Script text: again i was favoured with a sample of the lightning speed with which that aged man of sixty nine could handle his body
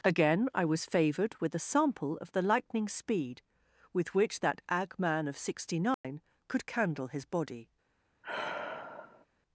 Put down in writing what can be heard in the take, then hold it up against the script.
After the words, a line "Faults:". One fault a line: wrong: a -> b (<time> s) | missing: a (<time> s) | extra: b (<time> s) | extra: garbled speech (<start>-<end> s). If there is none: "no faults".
again i was favoured with a sample of the lightning speed with which that ag man of sixty nine could candle his body
Faults:
wrong: aged -> ag (4.7 s)
wrong: handle -> candle (6.7 s)